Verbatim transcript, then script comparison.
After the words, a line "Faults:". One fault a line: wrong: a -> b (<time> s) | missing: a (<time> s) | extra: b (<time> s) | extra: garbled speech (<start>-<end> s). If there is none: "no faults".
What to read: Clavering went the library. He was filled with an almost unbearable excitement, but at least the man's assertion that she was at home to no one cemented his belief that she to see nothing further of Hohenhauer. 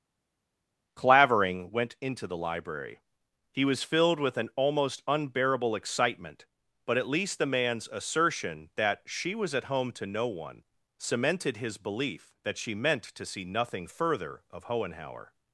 Clavering went into the library. He was filled with an almost unbearable excitement, but at least the man's assertion that she was at home to no one cemented his belief that she meant to see nothing further of Hohenhauer.
Faults:
extra: into (2.0 s)
extra: meant (12.7 s)